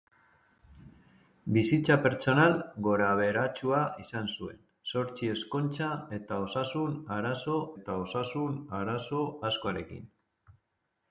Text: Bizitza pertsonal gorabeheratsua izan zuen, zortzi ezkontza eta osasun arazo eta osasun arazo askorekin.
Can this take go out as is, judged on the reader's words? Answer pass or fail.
pass